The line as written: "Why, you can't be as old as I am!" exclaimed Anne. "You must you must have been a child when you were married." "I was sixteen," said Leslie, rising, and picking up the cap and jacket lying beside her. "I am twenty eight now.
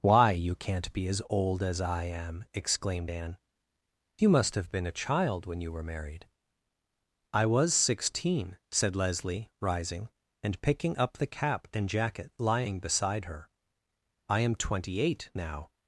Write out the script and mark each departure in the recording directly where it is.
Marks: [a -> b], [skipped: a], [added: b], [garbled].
"Why, you can't be as old as I am!" exclaimed Anne. "You must [skipped: you must] have been a child when you were married." "I was sixteen," said Leslie, rising, and picking up the cap and jacket lying beside her. "I am twenty eight now.